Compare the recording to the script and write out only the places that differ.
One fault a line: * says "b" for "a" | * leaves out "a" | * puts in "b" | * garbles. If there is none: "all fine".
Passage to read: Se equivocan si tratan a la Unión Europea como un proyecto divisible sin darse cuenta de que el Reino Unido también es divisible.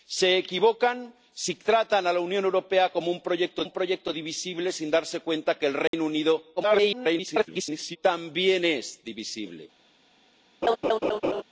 * puts in "un proyecto"
* garbles